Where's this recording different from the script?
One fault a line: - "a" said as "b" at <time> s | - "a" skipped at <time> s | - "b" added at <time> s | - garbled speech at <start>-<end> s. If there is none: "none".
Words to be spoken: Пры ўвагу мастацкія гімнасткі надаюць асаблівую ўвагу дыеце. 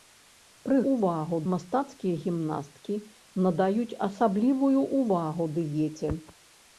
none